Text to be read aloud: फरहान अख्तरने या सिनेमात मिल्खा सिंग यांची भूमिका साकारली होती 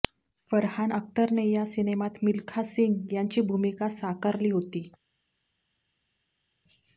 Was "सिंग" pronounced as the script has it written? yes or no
yes